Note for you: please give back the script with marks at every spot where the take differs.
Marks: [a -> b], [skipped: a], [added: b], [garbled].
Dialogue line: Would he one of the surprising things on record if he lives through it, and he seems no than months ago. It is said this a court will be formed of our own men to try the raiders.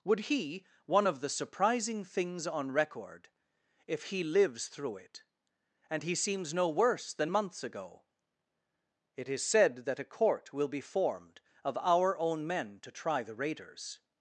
Would he one of the surprising things on record if he lives through it, and he seems no [added: worse] than months ago. It is said [this -> that] a court will be formed of our own men to try the raiders.